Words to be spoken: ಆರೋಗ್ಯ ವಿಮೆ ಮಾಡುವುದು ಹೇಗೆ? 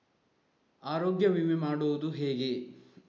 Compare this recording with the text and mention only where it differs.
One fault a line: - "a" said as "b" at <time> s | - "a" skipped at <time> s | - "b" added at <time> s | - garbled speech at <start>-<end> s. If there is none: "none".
none